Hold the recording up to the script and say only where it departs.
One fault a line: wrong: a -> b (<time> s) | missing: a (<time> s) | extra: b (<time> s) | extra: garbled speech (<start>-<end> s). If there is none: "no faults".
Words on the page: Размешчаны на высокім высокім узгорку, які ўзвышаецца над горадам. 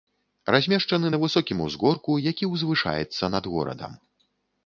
missing: высокім (1.6 s)